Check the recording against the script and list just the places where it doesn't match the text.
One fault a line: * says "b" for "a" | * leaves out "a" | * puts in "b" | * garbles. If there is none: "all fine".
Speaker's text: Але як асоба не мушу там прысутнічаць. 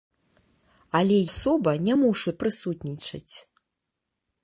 * leaves out "як"
* leaves out "там"